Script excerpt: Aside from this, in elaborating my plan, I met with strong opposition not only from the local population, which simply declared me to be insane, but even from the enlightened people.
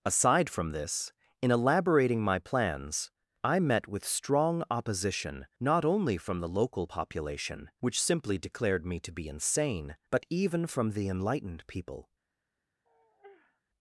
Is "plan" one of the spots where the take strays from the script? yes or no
yes